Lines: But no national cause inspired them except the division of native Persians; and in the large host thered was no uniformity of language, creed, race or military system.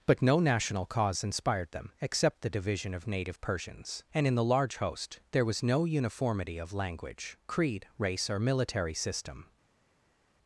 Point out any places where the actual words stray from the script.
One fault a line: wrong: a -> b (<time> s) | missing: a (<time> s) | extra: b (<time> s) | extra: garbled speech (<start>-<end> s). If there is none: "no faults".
wrong: thered -> there (5.3 s)